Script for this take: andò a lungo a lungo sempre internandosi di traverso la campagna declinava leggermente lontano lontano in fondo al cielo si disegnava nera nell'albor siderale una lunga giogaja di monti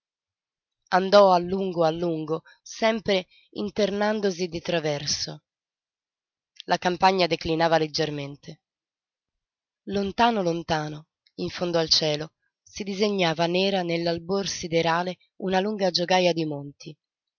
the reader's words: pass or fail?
pass